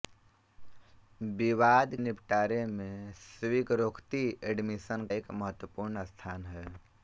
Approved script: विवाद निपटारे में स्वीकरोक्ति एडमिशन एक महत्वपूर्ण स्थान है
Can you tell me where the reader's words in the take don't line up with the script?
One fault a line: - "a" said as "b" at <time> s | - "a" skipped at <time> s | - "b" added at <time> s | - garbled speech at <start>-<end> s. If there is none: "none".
none